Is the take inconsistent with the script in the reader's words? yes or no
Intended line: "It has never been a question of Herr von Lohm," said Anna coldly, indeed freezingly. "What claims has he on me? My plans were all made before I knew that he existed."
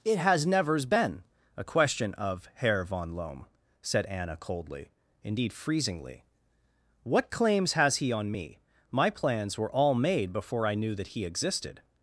yes